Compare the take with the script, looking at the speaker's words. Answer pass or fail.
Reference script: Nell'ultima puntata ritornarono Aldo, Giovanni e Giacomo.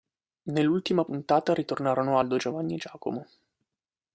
pass